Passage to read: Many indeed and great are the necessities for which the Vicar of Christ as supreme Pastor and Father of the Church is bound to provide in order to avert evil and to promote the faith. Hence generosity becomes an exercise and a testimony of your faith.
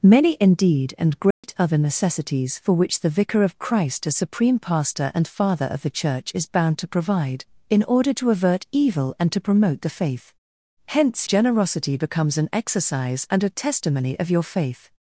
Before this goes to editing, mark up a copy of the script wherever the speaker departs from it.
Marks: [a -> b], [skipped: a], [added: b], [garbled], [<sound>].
Many indeed and great [dropout] are the necessities for which the Vicar of Christ as supreme Pastor and Father of the Church is bound to provide in order to avert evil and to promote the faith. Hence generosity becomes an exercise and a testimony of your faith.